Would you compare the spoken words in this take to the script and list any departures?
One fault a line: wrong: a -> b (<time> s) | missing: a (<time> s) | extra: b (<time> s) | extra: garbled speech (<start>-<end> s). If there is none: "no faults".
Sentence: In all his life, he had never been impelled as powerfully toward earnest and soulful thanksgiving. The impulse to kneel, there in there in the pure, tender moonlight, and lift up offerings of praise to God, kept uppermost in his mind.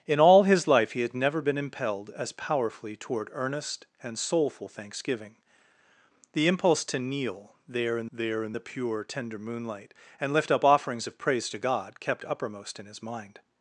no faults